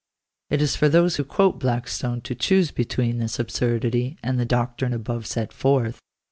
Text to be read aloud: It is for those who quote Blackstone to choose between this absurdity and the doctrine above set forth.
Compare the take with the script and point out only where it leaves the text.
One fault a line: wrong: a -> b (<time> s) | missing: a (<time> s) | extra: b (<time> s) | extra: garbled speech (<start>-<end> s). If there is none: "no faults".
no faults